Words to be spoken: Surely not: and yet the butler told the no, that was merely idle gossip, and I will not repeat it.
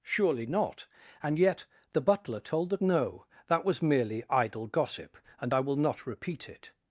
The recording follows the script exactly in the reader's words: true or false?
true